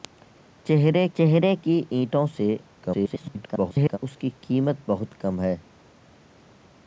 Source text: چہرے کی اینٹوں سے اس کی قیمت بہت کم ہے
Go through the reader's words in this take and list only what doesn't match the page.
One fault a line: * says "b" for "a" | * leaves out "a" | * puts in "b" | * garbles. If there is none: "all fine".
* puts in "چہرے"
* garbles